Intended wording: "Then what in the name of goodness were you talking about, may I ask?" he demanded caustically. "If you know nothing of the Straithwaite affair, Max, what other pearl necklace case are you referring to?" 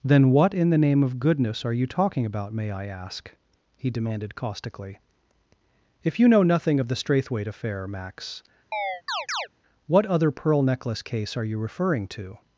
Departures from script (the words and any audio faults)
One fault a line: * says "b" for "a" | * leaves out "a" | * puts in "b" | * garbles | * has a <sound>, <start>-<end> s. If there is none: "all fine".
* says "are" for "were"
* has a chirp, 8.7-9.5 s